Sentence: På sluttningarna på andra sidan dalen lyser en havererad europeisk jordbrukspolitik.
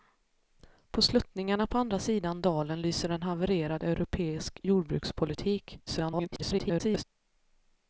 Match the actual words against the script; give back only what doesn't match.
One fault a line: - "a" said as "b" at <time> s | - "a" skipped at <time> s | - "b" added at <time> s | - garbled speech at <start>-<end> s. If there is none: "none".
- garbled speech at 5.9-7.0 s